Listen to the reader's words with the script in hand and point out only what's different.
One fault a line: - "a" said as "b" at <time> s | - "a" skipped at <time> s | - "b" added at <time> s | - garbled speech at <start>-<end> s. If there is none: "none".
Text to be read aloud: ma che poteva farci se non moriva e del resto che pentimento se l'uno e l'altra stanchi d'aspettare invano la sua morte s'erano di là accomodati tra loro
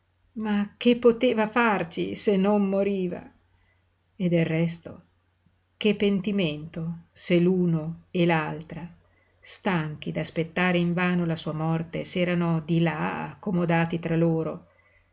none